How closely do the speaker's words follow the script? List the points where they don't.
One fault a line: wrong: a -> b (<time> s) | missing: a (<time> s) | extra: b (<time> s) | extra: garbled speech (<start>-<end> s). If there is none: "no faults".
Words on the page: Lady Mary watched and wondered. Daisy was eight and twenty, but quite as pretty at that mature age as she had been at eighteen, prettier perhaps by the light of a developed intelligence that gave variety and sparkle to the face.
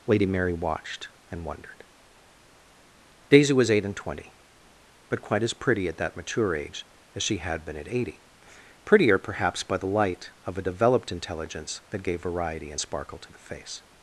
wrong: eighteen -> eighty (7.9 s)